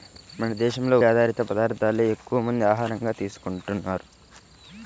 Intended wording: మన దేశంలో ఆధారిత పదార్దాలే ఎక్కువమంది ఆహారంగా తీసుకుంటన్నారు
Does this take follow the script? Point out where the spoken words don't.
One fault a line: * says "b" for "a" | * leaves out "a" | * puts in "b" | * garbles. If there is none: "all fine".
all fine